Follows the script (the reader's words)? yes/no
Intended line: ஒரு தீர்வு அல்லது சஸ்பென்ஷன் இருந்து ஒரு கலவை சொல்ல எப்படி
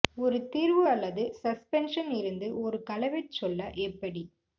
yes